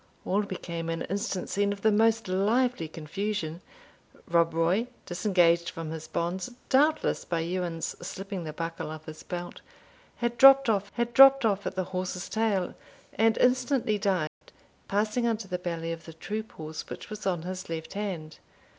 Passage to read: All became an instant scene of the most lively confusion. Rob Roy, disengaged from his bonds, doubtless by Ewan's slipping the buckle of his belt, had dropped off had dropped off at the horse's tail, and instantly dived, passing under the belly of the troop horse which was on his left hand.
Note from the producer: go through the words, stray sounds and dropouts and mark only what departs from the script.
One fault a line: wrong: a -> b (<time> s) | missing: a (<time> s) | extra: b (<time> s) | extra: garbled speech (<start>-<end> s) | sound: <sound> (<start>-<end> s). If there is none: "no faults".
sound: dropout (14.3-14.4 s)